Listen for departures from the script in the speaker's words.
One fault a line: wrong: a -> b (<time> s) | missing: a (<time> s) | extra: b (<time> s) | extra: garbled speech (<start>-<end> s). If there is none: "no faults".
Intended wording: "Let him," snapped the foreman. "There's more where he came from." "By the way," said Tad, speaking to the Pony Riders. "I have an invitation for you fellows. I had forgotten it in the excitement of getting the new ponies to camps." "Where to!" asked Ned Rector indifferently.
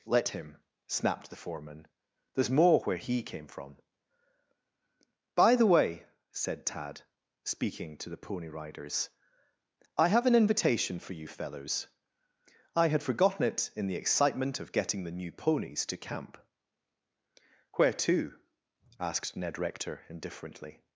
wrong: camps -> camp (16.0 s)